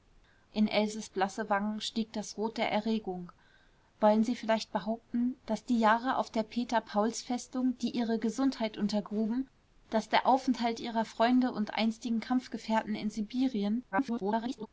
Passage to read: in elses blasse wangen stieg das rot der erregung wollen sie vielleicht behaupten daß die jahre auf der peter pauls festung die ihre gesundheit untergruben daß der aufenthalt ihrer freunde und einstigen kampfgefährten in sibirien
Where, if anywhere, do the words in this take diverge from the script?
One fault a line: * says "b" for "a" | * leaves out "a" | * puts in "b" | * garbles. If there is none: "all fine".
* garbles